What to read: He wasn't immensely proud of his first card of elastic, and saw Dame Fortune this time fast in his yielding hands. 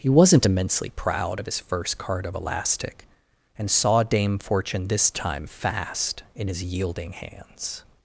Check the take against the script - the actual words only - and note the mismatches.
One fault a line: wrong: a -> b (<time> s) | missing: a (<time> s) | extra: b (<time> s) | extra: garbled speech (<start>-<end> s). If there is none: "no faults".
no faults